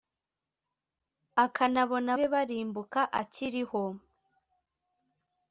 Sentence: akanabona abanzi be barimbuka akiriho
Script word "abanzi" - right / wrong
wrong